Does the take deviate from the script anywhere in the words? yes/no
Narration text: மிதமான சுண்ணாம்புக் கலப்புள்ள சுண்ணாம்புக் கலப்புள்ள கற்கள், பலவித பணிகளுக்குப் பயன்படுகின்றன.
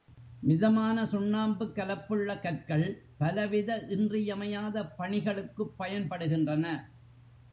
yes